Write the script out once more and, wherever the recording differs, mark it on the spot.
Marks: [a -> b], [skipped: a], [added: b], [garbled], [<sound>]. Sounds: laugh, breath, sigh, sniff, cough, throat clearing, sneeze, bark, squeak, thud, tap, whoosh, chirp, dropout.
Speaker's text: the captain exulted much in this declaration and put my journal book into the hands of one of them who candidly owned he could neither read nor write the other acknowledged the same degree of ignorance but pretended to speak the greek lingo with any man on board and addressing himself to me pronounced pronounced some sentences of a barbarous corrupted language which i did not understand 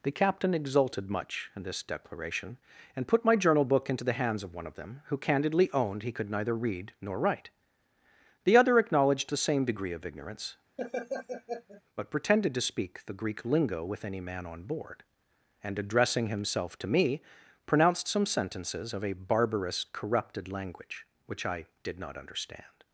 the captain exulted much in this declaration and put my journal book into the hands of one of them who candidly owned he could neither read nor write the other acknowledged the same degree of ignorance [laugh] but pretended to speak the greek lingo with any man on board and addressing himself to me pronounced [skipped: pronounced] some sentences of a barbarous corrupted language which i did not understand